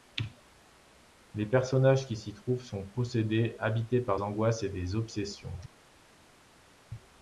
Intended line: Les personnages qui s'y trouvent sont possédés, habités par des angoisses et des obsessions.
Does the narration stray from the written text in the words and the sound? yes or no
yes